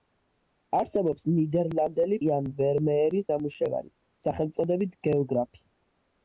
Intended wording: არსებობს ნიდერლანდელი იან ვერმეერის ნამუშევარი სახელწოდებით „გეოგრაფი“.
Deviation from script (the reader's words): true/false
false